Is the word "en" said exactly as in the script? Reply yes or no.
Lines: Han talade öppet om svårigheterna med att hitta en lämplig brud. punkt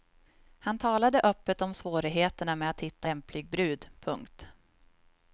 no